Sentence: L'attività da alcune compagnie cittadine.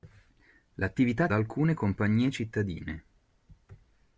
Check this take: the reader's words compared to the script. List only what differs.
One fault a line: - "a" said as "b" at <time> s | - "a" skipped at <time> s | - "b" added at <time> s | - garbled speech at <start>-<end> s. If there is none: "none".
none